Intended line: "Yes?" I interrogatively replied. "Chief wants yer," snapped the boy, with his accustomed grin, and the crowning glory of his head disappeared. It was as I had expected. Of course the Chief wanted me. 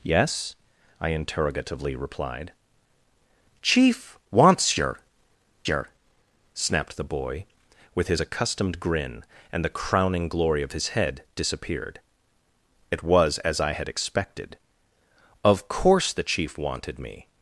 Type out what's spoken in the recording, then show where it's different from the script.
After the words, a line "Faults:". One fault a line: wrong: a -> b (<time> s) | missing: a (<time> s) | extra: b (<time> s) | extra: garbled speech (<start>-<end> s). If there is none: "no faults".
"Yes?" I interrogatively replied. "Chief wants yer yer," snapped the boy, with his accustomed grin, and the crowning glory of his head disappeared. It was as I had expected. Of course the Chief wanted me.
Faults:
extra: yer (5.7 s)